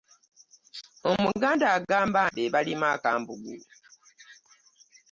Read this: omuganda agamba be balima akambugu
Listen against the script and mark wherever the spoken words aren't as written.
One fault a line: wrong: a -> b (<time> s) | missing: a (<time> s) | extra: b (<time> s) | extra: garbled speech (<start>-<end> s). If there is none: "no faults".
no faults